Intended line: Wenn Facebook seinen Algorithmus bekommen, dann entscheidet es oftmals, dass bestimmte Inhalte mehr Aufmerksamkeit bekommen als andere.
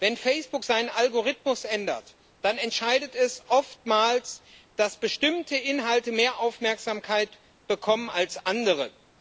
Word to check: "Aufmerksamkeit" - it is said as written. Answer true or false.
true